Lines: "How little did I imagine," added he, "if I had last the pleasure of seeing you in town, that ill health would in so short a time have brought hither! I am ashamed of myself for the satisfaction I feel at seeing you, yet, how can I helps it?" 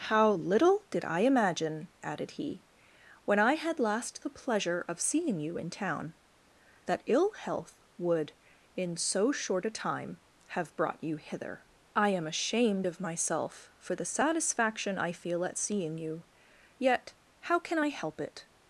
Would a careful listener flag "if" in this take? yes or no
yes